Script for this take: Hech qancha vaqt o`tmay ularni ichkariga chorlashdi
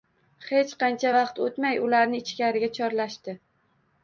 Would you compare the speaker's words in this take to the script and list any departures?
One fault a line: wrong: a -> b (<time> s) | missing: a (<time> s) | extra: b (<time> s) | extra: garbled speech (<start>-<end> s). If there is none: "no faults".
no faults